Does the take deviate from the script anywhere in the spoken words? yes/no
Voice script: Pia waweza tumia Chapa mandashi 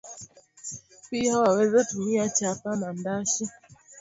no